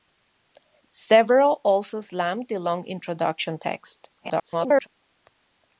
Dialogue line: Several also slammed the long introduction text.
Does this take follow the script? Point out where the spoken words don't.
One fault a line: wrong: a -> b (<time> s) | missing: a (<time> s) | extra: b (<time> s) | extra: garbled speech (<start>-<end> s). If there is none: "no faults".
extra: garbled speech (4.2-4.9 s)